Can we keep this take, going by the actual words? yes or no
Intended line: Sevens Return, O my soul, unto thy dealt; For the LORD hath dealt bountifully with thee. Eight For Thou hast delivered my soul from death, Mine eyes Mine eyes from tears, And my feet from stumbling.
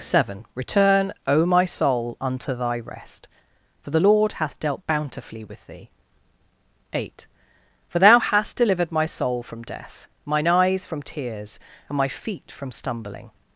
no